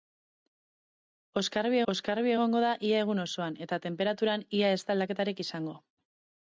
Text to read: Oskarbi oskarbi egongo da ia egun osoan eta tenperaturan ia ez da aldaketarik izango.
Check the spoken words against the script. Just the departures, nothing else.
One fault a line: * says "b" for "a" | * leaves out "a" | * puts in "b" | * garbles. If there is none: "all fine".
all fine